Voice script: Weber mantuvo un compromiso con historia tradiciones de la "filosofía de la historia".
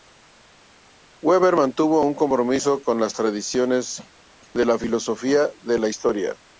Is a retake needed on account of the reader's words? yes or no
yes